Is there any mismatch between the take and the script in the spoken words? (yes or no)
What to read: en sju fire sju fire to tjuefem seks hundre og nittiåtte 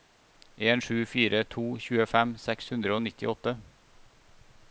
yes